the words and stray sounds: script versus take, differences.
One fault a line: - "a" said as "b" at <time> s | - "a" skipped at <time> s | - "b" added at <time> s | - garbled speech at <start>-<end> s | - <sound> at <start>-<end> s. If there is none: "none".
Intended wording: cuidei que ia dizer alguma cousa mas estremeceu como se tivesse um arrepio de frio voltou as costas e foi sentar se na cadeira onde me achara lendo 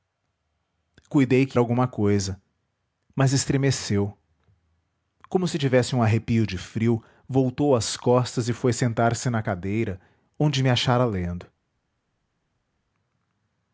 - "ia dizer" skipped at 1.6 s